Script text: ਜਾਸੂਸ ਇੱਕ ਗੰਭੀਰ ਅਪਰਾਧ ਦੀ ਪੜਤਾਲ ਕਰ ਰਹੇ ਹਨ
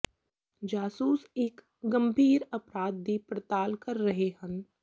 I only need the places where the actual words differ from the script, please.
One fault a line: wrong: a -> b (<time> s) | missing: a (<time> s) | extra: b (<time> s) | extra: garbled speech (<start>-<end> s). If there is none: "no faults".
no faults